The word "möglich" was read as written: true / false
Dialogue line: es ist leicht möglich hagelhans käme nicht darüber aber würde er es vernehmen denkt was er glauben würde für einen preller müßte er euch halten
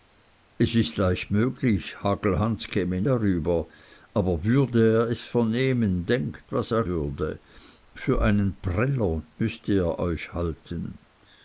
true